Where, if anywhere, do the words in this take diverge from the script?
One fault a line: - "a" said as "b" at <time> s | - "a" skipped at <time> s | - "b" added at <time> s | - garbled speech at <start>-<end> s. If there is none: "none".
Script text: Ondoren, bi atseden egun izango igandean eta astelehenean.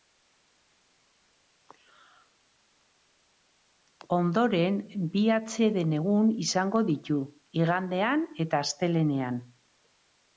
- "ditu" added at 6.9 s